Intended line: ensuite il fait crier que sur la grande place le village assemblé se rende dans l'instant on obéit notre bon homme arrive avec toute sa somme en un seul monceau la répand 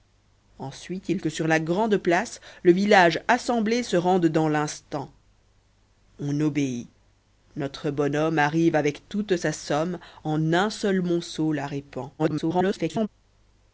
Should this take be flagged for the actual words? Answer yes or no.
yes